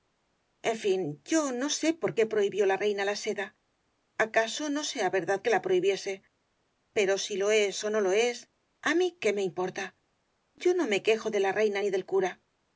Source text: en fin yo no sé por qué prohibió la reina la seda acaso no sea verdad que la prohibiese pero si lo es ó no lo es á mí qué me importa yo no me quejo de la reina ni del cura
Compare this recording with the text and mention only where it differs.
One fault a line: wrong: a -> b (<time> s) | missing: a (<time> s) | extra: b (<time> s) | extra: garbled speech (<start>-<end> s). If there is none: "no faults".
no faults